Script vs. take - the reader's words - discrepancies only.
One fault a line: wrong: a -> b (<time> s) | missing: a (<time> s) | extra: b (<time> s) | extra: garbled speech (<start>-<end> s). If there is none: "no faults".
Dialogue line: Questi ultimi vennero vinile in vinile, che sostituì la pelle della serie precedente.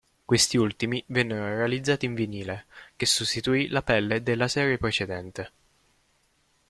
wrong: vinile -> realizzati (1.4 s)